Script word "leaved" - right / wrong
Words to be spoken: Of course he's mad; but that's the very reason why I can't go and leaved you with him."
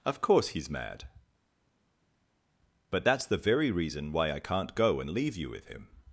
wrong